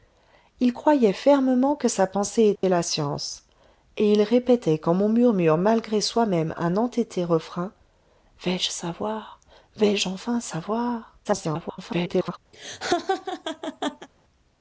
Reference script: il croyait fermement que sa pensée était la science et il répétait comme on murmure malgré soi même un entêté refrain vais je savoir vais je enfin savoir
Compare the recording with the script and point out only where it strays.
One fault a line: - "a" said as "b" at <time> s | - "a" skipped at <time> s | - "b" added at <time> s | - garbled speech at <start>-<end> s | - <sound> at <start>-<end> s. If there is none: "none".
- dropout at 2.6-2.6 s
- garbled speech at 11.2-12.4 s
- laugh at 12.5-14.1 s